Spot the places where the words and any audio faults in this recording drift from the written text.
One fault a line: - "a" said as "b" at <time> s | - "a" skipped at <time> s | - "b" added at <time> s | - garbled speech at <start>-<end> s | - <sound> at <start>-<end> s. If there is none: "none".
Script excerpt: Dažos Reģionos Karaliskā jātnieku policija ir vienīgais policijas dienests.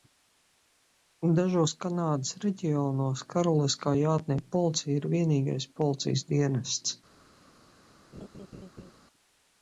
- "Kanādas" added at 1.8 s
- laugh at 8.1-8.9 s